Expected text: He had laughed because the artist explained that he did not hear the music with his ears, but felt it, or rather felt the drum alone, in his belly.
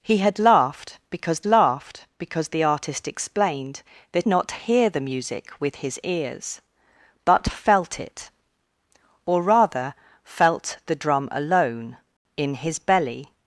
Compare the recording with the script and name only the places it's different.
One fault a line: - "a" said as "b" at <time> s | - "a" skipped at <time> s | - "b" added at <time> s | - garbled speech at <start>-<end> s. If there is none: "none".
- "laughed because" added at 1.5 s
- "he did" skipped at 4.3 s